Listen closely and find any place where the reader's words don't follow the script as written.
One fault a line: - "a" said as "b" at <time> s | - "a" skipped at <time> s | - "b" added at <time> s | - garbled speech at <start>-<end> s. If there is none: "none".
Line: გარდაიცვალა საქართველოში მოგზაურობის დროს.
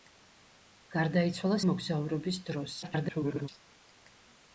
- "საქართველოში" skipped at 1.6 s
- garbled speech at 2.8-3.5 s